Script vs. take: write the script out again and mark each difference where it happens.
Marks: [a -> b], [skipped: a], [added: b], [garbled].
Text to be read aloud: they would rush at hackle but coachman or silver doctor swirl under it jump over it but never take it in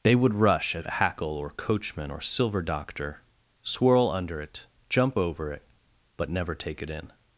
they would rush at hackle [but -> or] coachman or silver doctor swirl under it jump over it but never take it in